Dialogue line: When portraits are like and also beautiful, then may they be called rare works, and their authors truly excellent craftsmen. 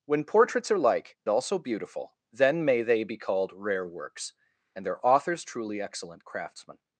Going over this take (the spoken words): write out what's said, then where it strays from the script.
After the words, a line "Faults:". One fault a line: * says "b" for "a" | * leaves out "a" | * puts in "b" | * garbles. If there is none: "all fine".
When portraits are like also beautiful, then may they be called rare works, and their authors truly excellent craftsmen.
Faults:
* leaves out "and"